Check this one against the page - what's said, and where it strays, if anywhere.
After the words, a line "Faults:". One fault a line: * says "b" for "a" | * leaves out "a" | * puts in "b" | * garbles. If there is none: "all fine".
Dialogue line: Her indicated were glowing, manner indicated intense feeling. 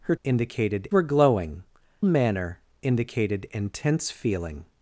Her indicated were glowing, manner indicated intense feeling.
Faults:
all fine